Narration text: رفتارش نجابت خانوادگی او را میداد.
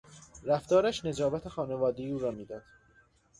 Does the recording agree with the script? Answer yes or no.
yes